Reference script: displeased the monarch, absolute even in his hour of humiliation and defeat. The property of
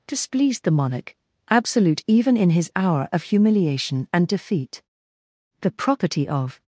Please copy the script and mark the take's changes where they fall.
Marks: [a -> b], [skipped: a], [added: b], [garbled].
displeased the monarch, absolute even in his hour of humiliation and defeat. The property of